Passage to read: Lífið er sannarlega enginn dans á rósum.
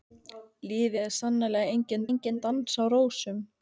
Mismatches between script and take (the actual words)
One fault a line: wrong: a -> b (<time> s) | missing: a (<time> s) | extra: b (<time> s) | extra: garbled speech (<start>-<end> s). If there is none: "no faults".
extra: enginn (2.1 s)